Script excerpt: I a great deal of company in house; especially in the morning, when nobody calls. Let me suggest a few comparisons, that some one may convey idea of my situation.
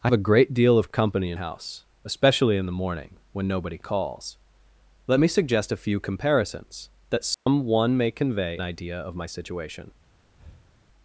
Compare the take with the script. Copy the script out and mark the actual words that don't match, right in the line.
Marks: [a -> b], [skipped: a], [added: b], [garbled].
I a great deal of company in house; especially in the morning, when nobody calls. Let me suggest a few comparisons, that some one may convey idea of my situation.